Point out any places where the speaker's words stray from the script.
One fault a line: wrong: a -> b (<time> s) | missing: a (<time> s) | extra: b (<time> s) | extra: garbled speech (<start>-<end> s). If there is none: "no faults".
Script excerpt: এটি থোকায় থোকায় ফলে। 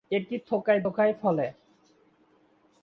no faults